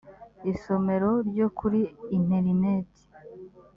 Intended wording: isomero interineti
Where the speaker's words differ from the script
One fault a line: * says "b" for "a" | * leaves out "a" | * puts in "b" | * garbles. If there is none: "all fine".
* puts in "ryo kuri"